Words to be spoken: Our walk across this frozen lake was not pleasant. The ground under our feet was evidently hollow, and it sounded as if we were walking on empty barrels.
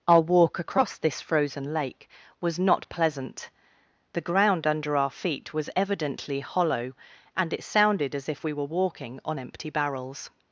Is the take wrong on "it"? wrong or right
right